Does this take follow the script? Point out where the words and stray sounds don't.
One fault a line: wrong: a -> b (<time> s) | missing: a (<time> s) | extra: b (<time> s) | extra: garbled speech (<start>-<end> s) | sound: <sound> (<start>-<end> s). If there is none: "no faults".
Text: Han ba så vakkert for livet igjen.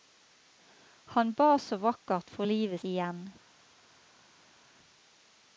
no faults